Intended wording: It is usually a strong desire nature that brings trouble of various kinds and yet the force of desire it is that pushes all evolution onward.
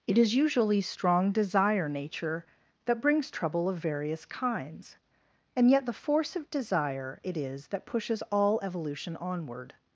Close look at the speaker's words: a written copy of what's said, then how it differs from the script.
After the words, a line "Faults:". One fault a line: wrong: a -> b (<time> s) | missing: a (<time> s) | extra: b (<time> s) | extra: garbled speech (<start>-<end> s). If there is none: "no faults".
It is usually strong desire nature that brings trouble of various kinds and yet the force of desire it is that pushes all evolution onward.
Faults:
missing: a (0.8 s)